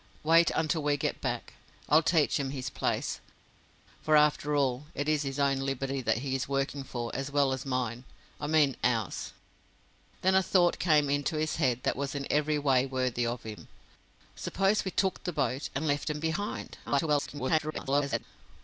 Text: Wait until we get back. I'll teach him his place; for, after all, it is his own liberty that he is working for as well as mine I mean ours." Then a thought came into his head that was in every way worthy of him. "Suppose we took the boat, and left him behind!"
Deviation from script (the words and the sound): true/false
true